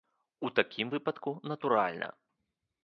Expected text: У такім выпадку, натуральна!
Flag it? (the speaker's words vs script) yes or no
no